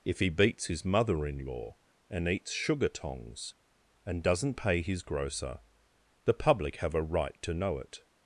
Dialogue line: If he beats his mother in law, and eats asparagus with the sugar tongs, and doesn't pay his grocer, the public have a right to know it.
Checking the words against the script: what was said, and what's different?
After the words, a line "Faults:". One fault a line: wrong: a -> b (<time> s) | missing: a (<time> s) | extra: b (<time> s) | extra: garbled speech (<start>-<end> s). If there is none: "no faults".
If he beats his mother in law, and eats sugar tongs, and doesn't pay his grocer, the public have a right to know it.
Faults:
missing: asparagus with the (2.5 s)